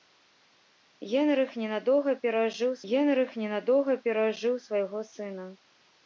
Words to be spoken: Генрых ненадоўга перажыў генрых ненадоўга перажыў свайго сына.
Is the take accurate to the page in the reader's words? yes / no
yes